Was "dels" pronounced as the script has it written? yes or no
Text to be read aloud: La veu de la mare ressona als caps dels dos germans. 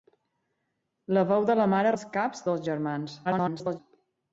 no